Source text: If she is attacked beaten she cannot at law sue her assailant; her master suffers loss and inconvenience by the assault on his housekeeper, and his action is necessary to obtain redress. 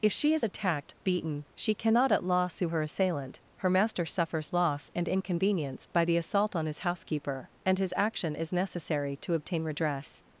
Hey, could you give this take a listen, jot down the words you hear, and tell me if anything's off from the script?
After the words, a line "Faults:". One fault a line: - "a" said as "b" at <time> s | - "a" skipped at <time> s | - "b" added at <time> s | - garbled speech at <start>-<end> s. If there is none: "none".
If she is attacked beaten she cannot at law sue her assailant; her master suffers loss and inconvenience by the assault on his housekeeper, and his action is necessary to obtain redress.
Faults:
none